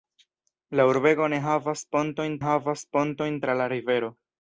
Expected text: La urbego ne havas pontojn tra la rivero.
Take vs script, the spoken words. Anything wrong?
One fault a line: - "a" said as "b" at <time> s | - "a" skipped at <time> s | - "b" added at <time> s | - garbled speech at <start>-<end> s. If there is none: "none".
- "havas pontojn" added at 2.4 s